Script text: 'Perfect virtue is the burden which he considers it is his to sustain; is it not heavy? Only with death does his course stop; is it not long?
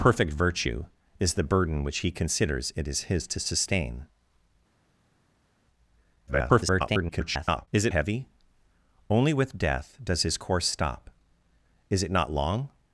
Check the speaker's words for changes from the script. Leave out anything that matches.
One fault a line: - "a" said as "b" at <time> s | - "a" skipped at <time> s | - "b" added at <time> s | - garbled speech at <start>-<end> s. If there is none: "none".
- garbled speech at 6.3-7.7 s
- "not" skipped at 7.9 s